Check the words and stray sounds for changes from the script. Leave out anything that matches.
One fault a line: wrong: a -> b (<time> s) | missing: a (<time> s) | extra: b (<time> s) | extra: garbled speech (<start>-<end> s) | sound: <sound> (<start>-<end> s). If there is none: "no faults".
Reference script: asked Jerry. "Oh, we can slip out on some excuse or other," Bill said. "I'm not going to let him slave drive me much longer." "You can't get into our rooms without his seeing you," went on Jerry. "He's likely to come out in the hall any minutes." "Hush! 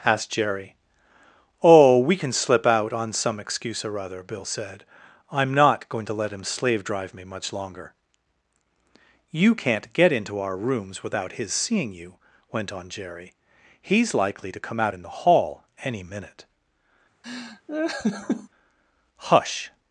wrong: minutes -> minute (16.0 s)
sound: laugh (17.2-18.5 s)